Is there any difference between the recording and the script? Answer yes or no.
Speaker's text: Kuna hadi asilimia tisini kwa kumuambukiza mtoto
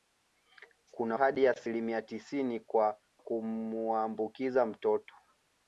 no